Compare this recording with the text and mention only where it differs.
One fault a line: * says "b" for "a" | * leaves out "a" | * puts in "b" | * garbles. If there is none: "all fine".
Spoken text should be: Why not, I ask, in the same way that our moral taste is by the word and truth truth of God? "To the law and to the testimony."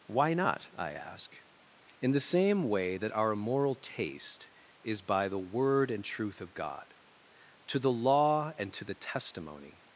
* leaves out "truth"